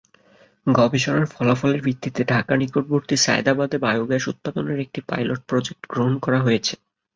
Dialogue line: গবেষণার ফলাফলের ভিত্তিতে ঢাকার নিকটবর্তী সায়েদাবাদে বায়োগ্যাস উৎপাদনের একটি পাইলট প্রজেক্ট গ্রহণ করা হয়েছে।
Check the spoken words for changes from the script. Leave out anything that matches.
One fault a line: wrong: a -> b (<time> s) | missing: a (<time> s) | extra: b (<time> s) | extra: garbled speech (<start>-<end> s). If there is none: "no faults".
no faults